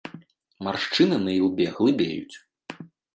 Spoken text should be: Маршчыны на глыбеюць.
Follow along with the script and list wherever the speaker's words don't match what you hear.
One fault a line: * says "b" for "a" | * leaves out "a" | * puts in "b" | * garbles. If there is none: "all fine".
* puts in "ілбе"